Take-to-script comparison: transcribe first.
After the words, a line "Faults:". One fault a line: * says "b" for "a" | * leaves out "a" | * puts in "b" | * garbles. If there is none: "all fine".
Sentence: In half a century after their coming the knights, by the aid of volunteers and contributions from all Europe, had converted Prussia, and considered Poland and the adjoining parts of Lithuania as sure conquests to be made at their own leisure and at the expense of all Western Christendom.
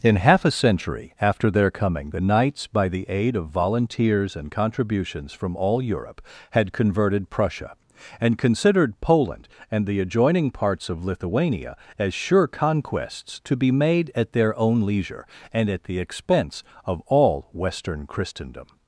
In half a century after their coming the knights, by the aid of volunteers and contributions from all Europe, had converted Prussia, and considered Poland and the adjoining parts of Lithuania as sure conquests to be made at their own leisure and at the expense of all Western Christendom.
Faults:
all fine